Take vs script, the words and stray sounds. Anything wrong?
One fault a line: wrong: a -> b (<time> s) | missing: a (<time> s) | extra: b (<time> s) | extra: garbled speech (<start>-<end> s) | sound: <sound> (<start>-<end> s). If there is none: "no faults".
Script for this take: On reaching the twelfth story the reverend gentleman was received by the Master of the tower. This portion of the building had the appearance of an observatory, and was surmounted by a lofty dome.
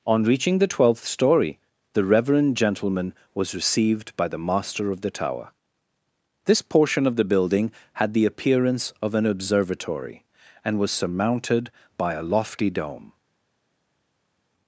no faults